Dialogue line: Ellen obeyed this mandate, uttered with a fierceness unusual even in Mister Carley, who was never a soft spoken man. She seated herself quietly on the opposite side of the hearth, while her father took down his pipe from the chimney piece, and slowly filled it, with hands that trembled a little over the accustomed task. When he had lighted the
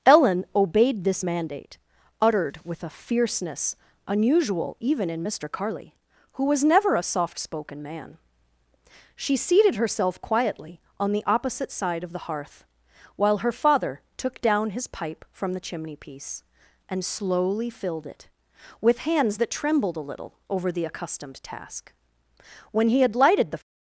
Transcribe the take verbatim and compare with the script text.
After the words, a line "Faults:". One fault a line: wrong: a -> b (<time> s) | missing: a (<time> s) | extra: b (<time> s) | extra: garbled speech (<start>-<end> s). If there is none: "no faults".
Ellen obeyed this mandate, uttered with a fierceness unusual even in Mister Carley, who was never a soft spoken man. She seated herself quietly on the opposite side of the hearth, while her father took down his pipe from the chimney piece, and slowly filled it, with hands that trembled a little over the accustomed task. When he had lighted the
Faults:
no faults